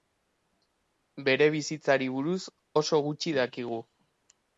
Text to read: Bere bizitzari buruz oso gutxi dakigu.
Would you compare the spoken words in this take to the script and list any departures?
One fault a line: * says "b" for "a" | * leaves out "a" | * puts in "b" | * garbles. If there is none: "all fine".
all fine